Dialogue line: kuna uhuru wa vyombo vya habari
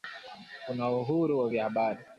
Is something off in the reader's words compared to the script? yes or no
yes